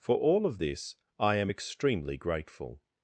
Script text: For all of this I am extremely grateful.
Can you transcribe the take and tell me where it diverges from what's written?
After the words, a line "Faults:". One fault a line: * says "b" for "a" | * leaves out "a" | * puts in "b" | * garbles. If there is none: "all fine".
For all of this I am extremely grateful.
Faults:
all fine